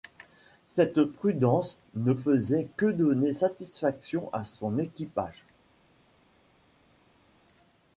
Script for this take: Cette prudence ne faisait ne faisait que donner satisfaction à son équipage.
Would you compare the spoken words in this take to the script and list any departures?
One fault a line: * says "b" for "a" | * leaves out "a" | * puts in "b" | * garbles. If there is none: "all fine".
* leaves out "ne faisait"